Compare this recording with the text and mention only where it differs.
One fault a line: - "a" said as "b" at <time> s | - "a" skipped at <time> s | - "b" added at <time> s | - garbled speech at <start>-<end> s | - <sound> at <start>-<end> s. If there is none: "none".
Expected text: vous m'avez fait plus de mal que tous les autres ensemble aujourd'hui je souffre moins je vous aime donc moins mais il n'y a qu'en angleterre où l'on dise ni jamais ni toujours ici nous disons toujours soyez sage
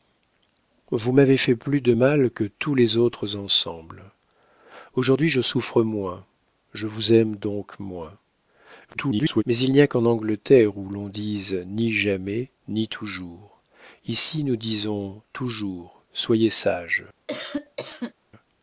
- garbled speech at 8.9-9.4 s
- cough at 17.3-18.1 s